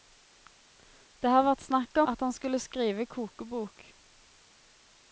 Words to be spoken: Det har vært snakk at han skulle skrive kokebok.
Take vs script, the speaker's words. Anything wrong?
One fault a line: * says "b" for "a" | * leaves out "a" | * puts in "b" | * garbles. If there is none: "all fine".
all fine